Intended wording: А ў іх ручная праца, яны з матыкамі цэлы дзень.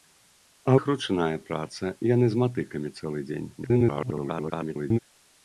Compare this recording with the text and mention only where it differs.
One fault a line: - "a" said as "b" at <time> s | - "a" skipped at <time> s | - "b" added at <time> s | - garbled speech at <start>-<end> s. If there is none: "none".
- "ў" skipped at 0.7 s
- garbled speech at 3.6-5.0 s